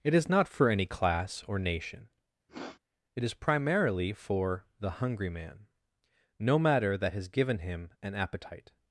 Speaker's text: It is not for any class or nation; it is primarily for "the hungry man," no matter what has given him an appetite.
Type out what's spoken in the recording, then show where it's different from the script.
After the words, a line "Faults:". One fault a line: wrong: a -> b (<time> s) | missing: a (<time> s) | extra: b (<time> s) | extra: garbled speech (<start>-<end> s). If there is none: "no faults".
It is not for any class or nation; it is primarily for "the hungry man," no matter that has given him an appetite.
Faults:
wrong: what -> that (7.0 s)